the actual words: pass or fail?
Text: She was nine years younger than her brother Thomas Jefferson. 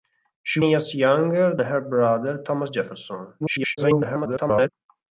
fail